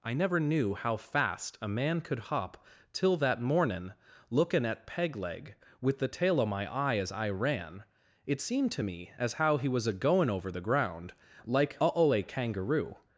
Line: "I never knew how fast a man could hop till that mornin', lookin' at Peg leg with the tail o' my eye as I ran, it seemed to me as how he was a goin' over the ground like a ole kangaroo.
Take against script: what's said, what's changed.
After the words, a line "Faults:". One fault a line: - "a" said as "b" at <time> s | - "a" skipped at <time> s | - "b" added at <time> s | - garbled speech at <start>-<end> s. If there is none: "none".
"I never knew how fast a man could hop till that mornin', lookin' at Peg leg with the tail o' my eye as I ran, it seemed to me as how he was a goin' over the ground like a ole kangaroo.
Faults:
none